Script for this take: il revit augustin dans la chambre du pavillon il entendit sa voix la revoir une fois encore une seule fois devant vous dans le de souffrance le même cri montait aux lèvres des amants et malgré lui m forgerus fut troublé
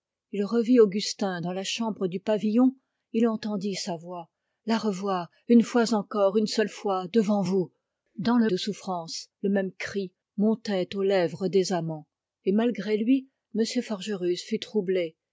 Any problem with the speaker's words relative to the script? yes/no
no